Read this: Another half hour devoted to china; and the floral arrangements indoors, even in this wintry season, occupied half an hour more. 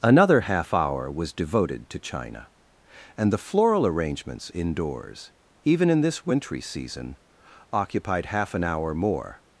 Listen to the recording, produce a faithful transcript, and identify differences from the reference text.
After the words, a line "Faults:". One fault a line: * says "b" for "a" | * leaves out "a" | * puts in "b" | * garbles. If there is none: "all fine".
Another half hour was devoted to china; and the floral arrangements indoors, even in this wintry season, occupied half an hour more.
Faults:
* puts in "was"